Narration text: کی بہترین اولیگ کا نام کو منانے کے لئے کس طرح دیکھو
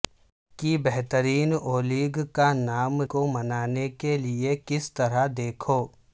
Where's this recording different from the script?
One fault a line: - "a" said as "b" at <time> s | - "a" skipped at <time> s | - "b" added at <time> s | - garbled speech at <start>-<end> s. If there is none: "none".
none